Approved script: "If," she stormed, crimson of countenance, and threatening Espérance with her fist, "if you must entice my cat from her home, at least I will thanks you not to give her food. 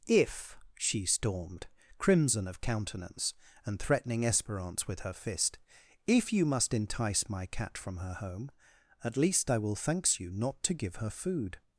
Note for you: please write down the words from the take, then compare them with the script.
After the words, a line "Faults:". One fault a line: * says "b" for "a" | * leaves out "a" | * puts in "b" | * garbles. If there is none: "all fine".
"If," she stormed, crimson of countenance, and threatening Espérance with her fist, "if you must entice my cat from her home, at least I will thanks you not to give her food.
Faults:
all fine